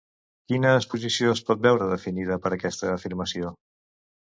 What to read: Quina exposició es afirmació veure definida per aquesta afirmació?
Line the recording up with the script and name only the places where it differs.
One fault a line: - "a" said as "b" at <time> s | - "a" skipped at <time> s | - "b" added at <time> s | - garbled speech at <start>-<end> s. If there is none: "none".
- "afirmació" said as "pot" at 1.5 s